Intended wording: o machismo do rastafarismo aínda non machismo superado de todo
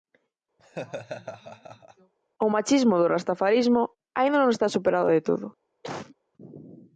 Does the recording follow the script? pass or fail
fail